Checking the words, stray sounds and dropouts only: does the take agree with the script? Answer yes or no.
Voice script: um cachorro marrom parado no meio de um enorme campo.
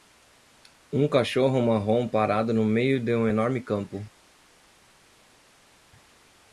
yes